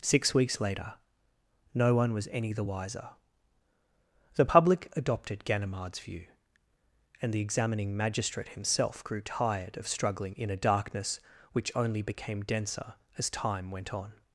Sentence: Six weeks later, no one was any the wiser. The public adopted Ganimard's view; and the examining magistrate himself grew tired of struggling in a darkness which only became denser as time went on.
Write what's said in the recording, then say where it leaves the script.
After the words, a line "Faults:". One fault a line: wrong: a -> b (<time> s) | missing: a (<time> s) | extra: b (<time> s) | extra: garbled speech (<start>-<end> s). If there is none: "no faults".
Six weeks later, no one was any the wiser. The public adopted Ganimard's view; and the examining magistrate himself grew tired of struggling in a darkness which only became denser as time went on.
Faults:
no faults